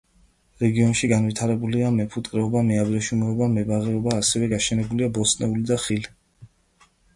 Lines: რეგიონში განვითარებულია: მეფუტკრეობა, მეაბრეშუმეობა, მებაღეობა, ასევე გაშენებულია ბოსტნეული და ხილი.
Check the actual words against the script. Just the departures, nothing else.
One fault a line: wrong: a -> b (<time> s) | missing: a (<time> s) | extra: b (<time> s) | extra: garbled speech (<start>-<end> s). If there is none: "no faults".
no faults